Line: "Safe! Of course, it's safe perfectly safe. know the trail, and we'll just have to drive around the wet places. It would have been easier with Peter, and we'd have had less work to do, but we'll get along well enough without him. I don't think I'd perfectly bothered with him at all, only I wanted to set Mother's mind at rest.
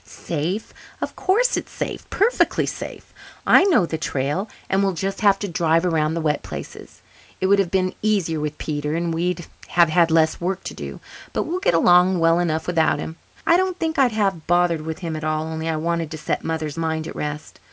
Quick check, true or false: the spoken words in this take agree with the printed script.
false